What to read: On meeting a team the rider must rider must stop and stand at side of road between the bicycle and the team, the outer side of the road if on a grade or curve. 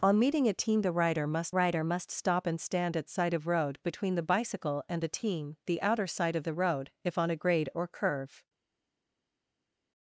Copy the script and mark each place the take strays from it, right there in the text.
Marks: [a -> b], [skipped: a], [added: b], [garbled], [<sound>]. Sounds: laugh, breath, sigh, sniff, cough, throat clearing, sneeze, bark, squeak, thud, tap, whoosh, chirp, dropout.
On meeting a team the rider must rider must stop and stand at side of road between the bicycle and the team, the outer side of the road if on a grade or curve.